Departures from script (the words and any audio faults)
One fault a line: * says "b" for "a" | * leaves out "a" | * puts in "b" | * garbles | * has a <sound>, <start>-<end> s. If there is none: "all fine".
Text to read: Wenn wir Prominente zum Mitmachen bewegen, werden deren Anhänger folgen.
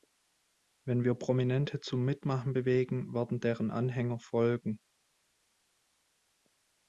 all fine